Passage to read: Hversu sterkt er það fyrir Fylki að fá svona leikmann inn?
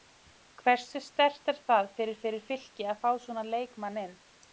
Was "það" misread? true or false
false